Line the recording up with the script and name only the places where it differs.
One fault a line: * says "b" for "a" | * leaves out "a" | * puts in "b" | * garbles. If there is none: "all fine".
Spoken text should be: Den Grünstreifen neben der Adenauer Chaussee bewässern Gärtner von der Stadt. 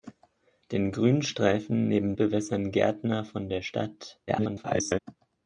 * leaves out "der Adenauer Chaussee"
* garbles